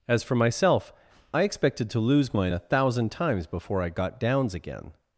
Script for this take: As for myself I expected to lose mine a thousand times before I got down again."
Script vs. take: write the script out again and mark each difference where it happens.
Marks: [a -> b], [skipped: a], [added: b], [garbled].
As for myself I expected to lose mine a thousand times before I got [down -> downs] again."